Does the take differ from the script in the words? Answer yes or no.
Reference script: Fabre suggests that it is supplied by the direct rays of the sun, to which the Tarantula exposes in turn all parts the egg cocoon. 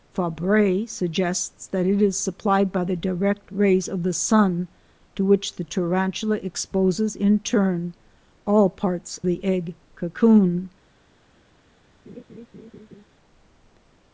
no